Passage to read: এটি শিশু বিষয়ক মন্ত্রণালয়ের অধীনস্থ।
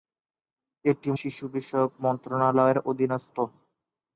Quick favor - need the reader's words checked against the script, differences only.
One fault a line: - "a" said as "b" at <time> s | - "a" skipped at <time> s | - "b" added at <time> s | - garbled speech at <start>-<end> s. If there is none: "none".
none